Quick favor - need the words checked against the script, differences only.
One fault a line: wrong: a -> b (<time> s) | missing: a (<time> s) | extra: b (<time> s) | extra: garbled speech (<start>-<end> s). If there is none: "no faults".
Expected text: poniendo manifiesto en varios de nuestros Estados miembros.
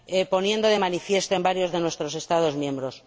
extra: de (0.7 s)